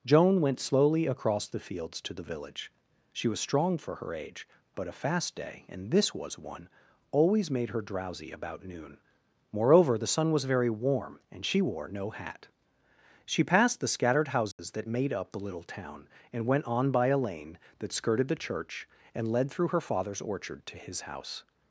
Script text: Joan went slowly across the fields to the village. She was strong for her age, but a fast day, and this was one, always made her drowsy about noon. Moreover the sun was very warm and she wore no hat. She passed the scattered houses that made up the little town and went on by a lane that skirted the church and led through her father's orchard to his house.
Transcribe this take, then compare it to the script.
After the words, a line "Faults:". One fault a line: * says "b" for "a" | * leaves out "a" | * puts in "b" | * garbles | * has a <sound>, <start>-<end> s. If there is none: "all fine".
Joan went slowly across the fields to the village. She was strong for her age, but a fast day, and this was one, always made her drowsy about noon. Moreover the sun was very warm and she wore no hat. She passed the scattered houses that made up the little town and went on by a lane that skirted the church and led through her father's orchard to his house.
Faults:
* has a dropout, 14.5-14.6 s